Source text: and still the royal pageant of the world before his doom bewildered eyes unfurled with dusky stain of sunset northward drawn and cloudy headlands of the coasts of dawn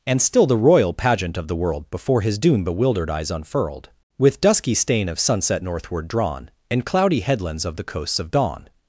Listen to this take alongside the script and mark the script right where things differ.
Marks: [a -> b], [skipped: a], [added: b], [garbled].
and still the royal pageant of the world before his doom bewildered eyes unfurled with dusky stain of sunset northward drawn and cloudy headlands of the coasts of dawn